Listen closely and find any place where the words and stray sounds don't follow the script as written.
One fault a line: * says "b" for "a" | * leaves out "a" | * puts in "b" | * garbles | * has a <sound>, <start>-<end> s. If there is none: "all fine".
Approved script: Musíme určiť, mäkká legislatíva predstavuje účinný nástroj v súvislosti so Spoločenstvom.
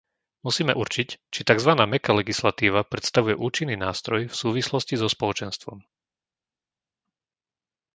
* puts in "či takzvaná"